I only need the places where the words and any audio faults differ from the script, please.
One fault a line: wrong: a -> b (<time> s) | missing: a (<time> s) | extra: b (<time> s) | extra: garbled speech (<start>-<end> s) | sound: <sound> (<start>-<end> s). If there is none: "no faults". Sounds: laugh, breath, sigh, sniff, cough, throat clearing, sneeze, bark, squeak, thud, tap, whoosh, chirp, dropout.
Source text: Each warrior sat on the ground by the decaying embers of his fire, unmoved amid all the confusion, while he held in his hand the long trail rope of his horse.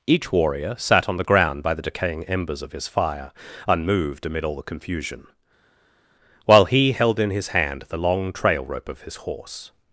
no faults